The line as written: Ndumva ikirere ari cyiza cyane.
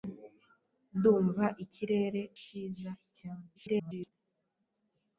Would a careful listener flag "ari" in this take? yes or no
yes